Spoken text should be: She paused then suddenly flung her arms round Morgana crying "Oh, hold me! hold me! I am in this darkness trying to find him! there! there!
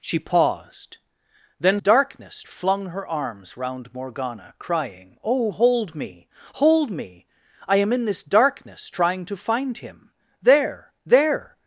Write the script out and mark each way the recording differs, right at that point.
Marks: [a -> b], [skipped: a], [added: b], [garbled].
She paused then [suddenly -> darkness] flung her arms round Morgana crying "Oh, hold me! hold me! I am in this darkness trying to find him! there! there!